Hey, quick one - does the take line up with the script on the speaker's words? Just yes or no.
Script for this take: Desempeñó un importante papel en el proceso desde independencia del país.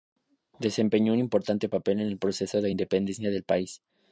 no